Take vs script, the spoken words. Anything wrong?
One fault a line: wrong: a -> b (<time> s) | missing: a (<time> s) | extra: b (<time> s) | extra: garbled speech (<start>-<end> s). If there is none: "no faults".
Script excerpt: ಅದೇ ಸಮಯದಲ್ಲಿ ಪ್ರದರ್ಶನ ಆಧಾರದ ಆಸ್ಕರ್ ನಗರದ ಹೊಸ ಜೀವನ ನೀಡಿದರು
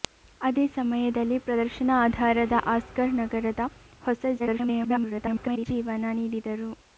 extra: garbled speech (4.4-5.7 s)